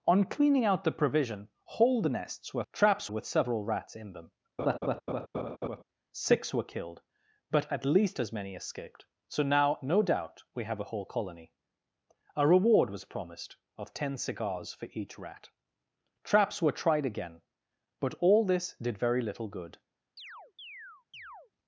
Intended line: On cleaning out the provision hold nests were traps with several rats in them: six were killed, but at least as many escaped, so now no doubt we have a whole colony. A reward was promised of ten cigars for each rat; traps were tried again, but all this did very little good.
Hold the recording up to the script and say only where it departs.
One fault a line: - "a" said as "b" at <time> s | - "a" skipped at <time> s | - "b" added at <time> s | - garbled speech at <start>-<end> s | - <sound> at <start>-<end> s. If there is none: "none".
- laugh at 4.6-5.8 s
- chirp at 20.2-21.5 s